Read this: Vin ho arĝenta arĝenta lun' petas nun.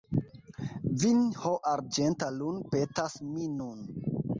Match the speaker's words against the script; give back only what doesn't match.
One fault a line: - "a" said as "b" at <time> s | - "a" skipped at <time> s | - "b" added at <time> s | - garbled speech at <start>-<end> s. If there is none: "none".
- "arĝenta" skipped at 2.3 s
- "mi" added at 3.3 s